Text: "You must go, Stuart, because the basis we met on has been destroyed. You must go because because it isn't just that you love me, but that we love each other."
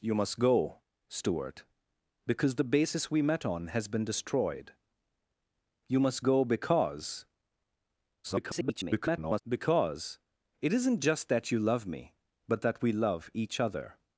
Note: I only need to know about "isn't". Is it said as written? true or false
true